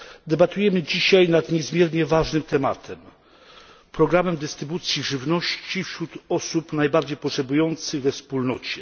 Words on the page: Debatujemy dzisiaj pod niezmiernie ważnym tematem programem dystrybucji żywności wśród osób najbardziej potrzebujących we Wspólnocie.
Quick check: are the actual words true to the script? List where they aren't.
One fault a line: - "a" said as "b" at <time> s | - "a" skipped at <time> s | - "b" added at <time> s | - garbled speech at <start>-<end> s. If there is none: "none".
- "pod" said as "nad" at 1.3 s